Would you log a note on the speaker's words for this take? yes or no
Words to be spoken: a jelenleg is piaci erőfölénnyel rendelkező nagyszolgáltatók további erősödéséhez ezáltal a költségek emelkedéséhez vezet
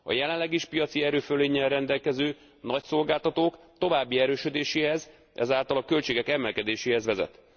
no